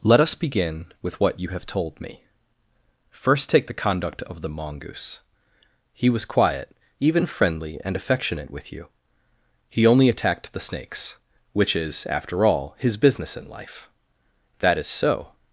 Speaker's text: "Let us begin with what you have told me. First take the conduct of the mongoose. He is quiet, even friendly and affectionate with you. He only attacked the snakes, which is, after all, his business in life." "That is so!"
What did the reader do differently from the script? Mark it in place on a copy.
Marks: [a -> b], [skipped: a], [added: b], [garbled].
"Let us begin with what you have told me. First take the conduct of the mongoose. He [is -> was] quiet, even friendly and affectionate with you. He only attacked the snakes, which is, after all, his business in life." "That is so!"